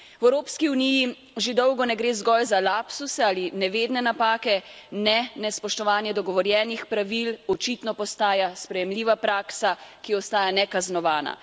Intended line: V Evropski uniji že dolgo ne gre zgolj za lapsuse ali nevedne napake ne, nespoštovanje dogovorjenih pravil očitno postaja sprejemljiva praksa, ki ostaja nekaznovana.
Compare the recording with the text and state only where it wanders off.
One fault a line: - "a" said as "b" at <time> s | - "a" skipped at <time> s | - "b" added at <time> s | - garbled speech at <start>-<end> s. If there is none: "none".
none